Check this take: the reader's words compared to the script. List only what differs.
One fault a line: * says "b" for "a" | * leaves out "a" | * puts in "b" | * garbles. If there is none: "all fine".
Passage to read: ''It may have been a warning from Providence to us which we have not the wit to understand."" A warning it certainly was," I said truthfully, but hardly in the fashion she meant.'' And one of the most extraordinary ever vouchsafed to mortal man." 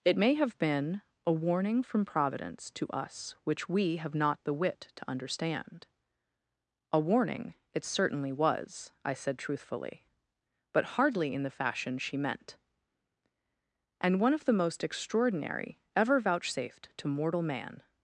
all fine